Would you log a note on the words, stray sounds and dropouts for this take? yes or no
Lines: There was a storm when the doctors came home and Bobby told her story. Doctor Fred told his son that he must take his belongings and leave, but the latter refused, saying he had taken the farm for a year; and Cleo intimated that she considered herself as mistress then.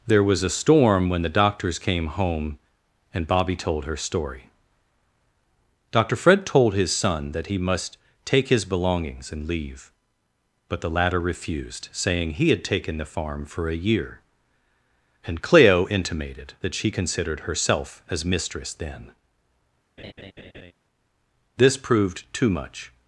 yes